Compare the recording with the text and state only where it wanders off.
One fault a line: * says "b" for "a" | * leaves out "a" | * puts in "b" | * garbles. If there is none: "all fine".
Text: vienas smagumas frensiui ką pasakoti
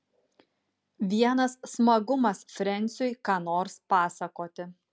* puts in "nors"